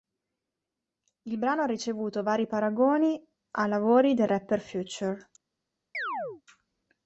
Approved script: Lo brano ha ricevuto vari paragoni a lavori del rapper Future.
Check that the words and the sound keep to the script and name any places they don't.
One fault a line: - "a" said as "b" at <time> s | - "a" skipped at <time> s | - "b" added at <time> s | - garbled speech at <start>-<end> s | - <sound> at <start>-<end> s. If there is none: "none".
- "Lo" said as "Il" at 1.2 s
- chirp at 5.9-6.4 s